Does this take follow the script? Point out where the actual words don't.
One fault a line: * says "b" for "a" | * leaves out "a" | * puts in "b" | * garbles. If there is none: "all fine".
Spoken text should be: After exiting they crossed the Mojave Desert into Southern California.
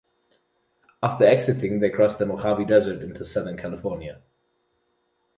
all fine